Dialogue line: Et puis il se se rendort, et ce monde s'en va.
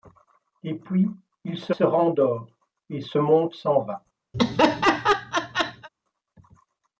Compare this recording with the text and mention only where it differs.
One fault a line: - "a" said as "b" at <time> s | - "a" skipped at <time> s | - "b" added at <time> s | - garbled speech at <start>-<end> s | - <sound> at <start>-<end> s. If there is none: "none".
- laugh at 4.3-5.9 s